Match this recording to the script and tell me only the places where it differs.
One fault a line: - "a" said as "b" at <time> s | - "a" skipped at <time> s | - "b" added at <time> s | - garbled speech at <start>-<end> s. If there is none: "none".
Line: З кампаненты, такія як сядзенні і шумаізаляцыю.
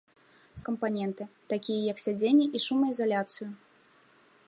none